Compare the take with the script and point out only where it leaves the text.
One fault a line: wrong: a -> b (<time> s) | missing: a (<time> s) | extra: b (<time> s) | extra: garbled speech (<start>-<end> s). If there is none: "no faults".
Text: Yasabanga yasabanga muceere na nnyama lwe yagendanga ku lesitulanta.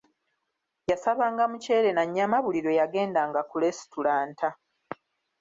missing: yasabanga (1.4 s)
extra: buli (2.4 s)